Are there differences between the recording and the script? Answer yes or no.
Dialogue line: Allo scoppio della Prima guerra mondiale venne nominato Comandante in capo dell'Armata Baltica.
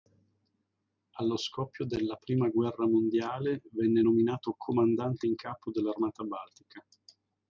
no